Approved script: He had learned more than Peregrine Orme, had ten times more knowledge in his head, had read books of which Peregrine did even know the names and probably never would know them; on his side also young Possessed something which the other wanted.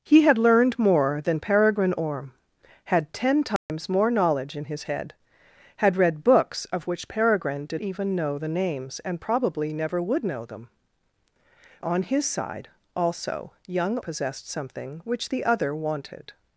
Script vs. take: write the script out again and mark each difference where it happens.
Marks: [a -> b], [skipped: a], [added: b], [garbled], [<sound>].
He had learned more than Peregrine Orme, had ten times [dropout] more knowledge in his head, had read books of which Peregrine did even know the names and probably never would know them; on his side also young Possessed something which the other wanted.